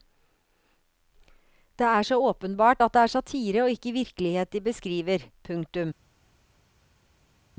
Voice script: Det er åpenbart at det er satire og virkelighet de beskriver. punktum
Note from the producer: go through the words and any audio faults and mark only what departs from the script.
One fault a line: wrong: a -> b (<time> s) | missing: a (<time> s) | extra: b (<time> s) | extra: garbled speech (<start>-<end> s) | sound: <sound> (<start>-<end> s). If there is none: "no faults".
extra: så (2.0 s)
extra: ikke (3.7 s)